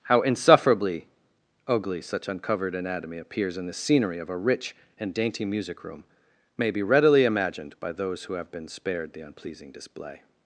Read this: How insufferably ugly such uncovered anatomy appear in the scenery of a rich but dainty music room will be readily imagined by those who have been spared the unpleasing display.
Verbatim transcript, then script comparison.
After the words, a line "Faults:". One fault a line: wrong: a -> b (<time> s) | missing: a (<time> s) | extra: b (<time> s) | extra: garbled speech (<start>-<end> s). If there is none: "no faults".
How insufferably ugly such uncovered anatomy appears in the scenery of a rich and dainty music room may be readily imagined by those who have been spared the unpleasing display.
Faults:
wrong: appear -> appears (3.2 s)
wrong: but -> and (5.0 s)
wrong: will -> may (6.6 s)